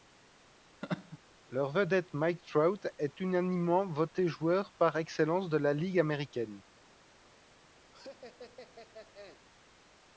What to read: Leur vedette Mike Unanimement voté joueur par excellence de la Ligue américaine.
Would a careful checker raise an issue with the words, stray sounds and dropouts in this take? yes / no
yes